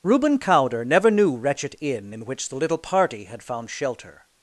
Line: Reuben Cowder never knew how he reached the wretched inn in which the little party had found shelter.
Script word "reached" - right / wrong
wrong